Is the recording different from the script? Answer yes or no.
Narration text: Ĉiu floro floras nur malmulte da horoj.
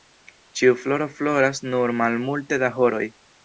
no